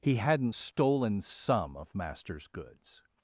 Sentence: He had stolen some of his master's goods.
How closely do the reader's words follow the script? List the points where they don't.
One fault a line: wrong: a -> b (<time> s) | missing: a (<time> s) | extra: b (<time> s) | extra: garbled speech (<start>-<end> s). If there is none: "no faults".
wrong: had -> hadn't (0.1 s)
missing: his (1.9 s)